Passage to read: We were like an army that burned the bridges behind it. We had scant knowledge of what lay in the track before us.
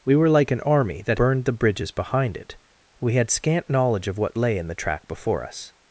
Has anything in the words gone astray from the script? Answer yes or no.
no